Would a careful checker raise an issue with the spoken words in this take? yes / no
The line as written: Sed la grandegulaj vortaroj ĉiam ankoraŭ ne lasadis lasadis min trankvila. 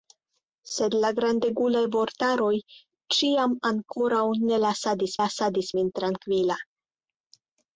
no